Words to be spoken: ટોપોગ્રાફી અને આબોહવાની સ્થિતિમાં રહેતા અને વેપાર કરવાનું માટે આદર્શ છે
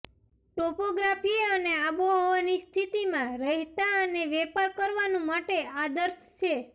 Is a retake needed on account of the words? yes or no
no